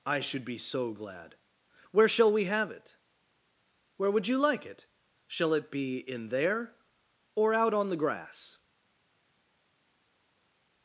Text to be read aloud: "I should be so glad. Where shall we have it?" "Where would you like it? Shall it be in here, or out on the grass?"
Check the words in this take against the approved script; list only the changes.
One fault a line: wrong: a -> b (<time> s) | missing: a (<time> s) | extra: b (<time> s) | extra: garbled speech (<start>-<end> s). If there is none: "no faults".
wrong: here -> there (6.3 s)